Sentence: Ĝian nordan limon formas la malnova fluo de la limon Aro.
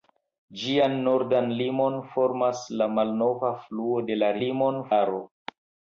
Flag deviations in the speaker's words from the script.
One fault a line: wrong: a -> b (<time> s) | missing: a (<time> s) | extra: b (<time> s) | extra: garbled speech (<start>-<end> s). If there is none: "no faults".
no faults